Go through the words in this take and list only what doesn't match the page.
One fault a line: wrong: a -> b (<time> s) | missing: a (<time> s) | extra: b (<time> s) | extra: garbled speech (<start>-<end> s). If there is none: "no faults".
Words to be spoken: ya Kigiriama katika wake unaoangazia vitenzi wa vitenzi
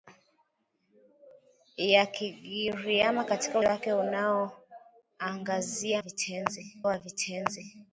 no faults